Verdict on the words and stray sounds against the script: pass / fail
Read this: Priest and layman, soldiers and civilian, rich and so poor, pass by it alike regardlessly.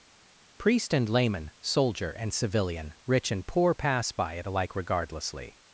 fail